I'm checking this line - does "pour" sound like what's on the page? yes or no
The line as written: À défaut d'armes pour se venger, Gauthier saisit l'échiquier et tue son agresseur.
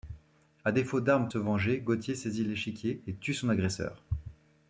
no